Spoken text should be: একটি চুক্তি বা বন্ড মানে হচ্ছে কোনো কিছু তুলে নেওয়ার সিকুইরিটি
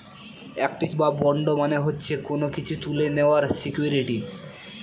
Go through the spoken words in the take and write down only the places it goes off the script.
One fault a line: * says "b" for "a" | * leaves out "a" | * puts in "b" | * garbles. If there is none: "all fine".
* leaves out "চুক্তি"